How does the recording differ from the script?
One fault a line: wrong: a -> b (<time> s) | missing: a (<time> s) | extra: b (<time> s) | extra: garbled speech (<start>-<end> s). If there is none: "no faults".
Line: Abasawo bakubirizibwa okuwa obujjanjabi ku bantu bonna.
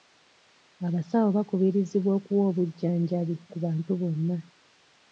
no faults